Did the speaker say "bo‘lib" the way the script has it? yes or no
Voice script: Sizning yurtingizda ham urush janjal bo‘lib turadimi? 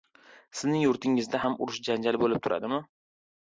yes